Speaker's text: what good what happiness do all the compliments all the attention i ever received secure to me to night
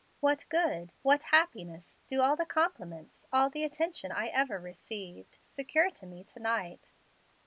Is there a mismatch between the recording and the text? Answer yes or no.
no